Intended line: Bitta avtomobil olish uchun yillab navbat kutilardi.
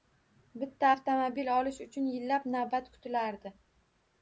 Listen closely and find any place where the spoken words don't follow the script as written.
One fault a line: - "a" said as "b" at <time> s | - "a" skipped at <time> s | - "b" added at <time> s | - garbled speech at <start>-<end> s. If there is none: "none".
none